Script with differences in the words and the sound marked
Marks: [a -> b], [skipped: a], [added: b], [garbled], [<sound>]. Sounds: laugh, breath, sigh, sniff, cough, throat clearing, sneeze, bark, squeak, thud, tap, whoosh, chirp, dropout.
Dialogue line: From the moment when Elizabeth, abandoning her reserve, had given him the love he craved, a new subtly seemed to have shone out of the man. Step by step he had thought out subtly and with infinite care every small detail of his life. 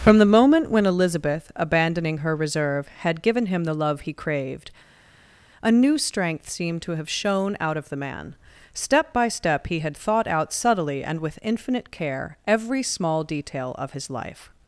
From the moment when Elizabeth, abandoning her reserve, had given him the love he craved, a new [subtly -> strength] seemed to have shone out of the man. Step by step he had thought out subtly and with infinite care every small detail of his life.